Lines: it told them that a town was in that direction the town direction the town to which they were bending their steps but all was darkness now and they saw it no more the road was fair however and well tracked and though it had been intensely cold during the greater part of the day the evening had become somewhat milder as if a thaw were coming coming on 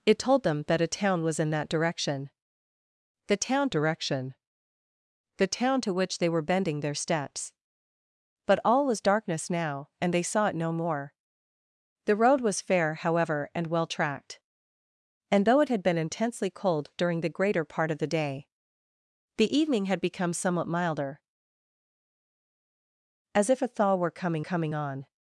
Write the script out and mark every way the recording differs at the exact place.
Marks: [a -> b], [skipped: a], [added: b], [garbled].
it told them that a town was in that direction the town direction the town to which they were bending their steps but all was darkness now and they saw it no more the road was fair however and well tracked and though it had been intensely cold during the greater part of the day the evening had become somewhat milder as if a thaw were coming coming on